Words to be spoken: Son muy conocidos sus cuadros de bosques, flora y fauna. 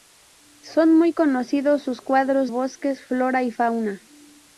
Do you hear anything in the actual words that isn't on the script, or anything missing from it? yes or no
yes